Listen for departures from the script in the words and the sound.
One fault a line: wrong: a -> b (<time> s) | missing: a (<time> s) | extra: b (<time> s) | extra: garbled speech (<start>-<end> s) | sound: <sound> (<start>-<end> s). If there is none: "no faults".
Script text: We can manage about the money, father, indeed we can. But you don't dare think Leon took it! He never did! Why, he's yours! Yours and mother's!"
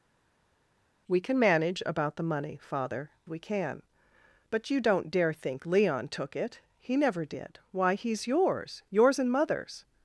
missing: indeed (3.1 s)